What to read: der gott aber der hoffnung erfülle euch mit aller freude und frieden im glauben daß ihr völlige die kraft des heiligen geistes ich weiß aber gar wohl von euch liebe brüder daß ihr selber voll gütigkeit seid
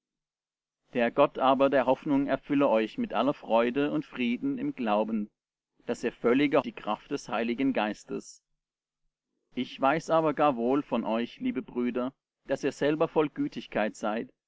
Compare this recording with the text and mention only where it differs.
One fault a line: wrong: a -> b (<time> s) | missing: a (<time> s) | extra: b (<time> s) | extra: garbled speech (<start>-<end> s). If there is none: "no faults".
no faults